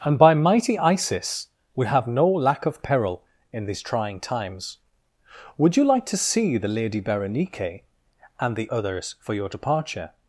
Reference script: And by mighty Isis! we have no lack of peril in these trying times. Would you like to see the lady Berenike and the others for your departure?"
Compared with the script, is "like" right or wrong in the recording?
right